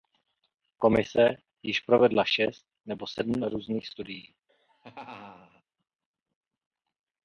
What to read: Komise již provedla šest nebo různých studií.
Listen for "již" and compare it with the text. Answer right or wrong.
right